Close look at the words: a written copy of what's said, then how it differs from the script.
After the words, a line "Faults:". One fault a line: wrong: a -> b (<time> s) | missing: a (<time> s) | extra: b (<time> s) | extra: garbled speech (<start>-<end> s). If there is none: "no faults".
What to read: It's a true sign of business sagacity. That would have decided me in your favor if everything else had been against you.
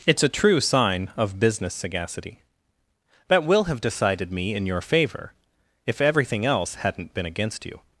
It's a true sign of business sagacity. That will have decided me in your favor if everything else hadn't been against you.
Faults:
wrong: would -> will (3.4 s)
wrong: had -> hadn't (6.8 s)